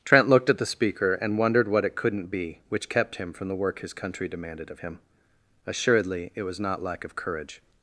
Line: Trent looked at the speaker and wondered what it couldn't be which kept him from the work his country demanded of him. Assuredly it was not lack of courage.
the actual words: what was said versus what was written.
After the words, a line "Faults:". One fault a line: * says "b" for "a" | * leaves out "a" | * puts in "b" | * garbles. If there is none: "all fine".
Trent looked at the speaker and wondered what it couldn't be which kept him from the work his country demanded of him. Assuredly it was not lack of courage.
Faults:
all fine